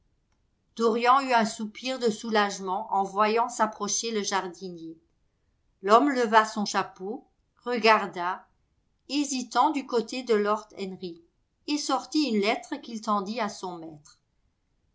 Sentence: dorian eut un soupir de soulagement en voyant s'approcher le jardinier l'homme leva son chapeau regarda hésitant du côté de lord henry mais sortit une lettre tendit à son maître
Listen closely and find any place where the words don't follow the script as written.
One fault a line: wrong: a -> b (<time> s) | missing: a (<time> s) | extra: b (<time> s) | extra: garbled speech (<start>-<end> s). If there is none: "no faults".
wrong: mais -> et (11.7 s)
extra: qu'il (12.8 s)